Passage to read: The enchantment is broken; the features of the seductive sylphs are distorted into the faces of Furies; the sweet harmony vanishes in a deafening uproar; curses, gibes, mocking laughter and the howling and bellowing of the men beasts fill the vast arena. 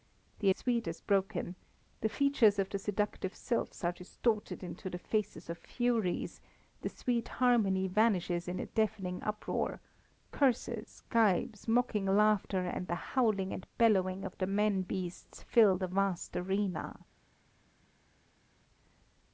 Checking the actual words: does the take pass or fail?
fail